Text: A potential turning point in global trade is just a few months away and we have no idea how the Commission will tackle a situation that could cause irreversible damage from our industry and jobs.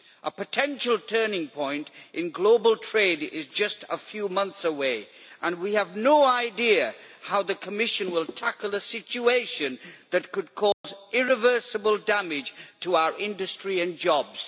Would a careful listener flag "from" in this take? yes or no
yes